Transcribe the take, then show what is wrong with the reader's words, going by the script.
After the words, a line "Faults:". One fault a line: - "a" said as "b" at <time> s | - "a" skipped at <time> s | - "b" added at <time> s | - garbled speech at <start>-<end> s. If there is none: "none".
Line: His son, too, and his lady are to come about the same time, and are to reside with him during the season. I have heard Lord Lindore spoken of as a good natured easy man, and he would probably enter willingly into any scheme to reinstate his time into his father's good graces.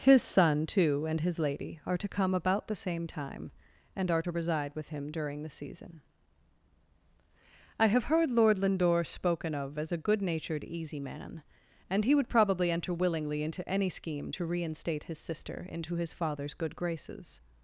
His son, too, and his lady are to come about the same time, and are to reside with him during the season. I have heard Lord Lindore spoken of as a good natured easy man, and he would probably enter willingly into any scheme to reinstate his sister into his father's good graces.
Faults:
- "time" said as "sister" at 15.2 s